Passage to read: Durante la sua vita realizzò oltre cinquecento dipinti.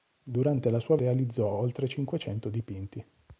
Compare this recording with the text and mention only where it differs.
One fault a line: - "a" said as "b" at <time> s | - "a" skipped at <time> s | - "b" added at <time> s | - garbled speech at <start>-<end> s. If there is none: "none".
- "vita" skipped at 1.0 s